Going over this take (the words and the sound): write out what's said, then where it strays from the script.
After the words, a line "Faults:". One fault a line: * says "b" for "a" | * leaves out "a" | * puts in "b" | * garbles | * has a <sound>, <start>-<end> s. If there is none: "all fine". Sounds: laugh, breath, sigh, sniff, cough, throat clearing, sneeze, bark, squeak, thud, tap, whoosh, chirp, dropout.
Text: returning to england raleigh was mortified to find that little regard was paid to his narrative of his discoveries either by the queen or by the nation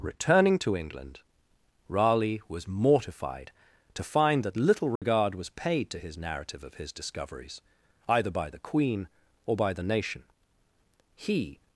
returning to england raleigh was mortified to find that little regard was paid to his narrative of his discoveries either by the queen or by the nation he
Faults:
* has a dropout, 5.0-5.0 s
* puts in "he"